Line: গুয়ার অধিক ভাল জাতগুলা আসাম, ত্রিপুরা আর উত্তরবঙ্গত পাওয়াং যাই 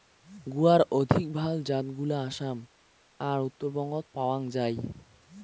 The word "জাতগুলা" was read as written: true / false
true